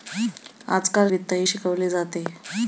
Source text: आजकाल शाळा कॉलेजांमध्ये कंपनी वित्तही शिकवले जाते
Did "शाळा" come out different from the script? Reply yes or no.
yes